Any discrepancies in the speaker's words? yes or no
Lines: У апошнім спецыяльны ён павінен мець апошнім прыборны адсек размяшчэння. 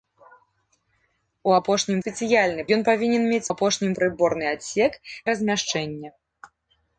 no